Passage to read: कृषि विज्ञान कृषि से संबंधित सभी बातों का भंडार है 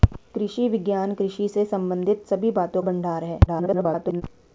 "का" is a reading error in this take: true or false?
true